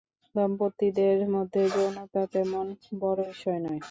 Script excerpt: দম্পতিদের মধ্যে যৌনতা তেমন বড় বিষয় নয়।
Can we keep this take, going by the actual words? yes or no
yes